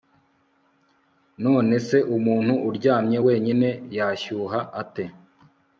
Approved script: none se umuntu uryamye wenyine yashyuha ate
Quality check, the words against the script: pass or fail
pass